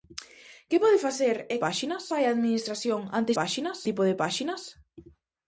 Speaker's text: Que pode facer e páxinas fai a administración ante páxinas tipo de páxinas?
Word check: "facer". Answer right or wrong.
right